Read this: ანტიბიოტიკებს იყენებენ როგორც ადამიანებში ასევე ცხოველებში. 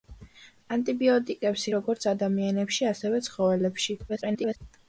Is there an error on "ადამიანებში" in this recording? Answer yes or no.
no